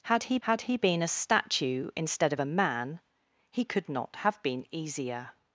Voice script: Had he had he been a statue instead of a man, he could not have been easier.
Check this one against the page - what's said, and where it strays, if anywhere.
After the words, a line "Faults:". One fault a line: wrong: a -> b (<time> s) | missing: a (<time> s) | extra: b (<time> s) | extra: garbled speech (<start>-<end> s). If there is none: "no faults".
Had he had he been a statue instead of a man, he could not have been easier.
Faults:
no faults